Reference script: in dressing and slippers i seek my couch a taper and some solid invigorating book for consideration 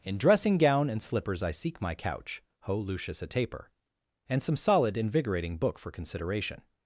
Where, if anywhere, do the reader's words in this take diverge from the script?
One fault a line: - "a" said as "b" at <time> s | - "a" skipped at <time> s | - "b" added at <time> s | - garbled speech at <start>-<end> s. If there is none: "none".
- "gown" added at 0.6 s
- "ho lucius" added at 2.6 s